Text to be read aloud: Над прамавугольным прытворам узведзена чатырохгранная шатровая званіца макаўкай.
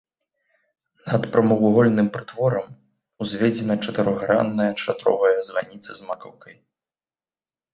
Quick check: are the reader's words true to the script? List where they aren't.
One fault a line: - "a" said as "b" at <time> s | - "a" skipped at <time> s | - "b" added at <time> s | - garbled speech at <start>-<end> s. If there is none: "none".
- "з" added at 6.0 s